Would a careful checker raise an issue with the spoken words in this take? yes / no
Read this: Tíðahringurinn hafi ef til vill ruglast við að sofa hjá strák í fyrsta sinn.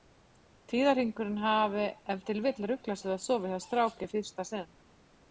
no